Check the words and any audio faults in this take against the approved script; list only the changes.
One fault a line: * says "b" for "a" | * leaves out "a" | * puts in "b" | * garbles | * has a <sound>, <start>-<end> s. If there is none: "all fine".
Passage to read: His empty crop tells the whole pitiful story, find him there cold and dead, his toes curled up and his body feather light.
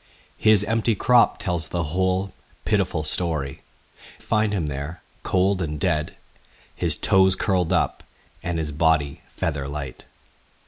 all fine